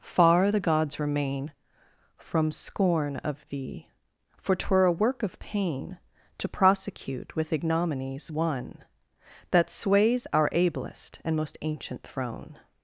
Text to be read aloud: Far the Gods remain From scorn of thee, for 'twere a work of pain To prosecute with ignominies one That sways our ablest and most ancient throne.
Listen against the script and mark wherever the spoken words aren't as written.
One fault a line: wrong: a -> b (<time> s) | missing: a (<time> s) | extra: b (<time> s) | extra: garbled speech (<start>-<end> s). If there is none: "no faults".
no faults